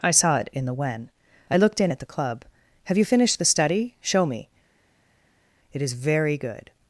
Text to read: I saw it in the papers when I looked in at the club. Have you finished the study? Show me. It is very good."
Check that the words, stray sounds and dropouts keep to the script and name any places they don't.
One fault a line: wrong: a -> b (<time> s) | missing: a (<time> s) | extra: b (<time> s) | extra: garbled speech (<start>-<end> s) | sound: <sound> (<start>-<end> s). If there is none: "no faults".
missing: papers (0.7 s)